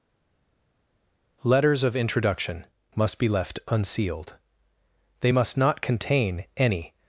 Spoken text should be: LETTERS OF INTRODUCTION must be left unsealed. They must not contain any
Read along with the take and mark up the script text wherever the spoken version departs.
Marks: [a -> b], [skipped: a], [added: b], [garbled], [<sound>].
LETTERS OF INTRODUCTION must be left unsealed. They must not contain any